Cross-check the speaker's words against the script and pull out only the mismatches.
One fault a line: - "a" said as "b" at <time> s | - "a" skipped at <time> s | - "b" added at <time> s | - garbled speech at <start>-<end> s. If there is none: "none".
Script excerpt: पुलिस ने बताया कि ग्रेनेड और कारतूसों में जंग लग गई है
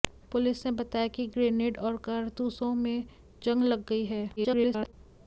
- garbled speech at 4.4-4.9 s